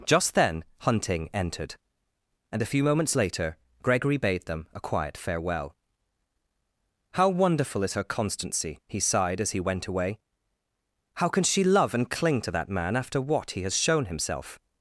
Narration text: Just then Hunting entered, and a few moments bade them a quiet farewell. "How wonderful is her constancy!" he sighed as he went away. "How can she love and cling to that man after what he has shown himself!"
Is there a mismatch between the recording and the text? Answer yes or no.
yes